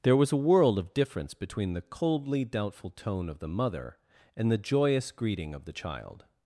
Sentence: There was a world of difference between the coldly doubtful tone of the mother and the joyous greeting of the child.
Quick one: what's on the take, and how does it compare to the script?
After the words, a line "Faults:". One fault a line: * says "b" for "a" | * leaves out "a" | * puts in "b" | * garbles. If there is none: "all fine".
There was a world of difference between the coldly doubtful tone of the mother and the joyous greeting of the child.
Faults:
all fine